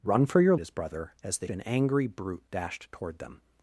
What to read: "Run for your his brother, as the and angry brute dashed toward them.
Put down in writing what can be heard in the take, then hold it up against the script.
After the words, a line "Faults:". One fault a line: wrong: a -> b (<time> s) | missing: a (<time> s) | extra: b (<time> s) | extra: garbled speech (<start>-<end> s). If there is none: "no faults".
"Run for your his brother, as the and angry brute dashed toward them.
Faults:
no faults